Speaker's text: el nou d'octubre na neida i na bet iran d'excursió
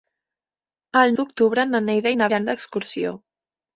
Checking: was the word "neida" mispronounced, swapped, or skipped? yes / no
no